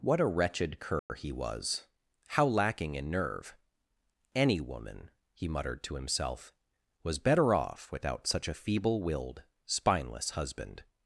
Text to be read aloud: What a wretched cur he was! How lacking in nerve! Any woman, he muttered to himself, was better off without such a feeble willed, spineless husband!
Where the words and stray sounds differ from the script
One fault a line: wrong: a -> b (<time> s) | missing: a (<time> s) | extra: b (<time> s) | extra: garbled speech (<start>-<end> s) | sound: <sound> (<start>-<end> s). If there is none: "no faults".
sound: dropout (1.0-1.1 s)